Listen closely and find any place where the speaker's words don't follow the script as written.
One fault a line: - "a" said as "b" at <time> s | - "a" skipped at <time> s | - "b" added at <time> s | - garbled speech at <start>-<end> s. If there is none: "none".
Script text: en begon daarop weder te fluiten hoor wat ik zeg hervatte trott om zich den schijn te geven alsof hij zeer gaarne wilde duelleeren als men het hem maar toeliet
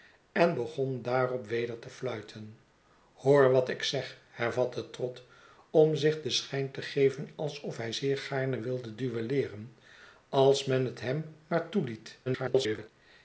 - garbled speech at 12.3-12.9 s